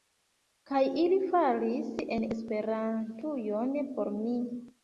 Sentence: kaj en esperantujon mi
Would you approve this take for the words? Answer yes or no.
no